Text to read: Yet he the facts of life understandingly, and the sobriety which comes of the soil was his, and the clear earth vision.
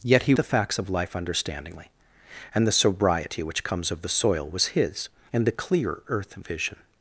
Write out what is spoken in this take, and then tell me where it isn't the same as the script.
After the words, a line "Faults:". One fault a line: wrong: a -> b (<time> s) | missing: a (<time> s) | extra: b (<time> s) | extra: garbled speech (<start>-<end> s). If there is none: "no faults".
Yet he the facts of life understandingly, and the sobriety which comes of the soil was his, and the clear earth vision.
Faults:
no faults